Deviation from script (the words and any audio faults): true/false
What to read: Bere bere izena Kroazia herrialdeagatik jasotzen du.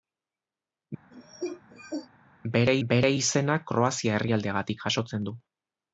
true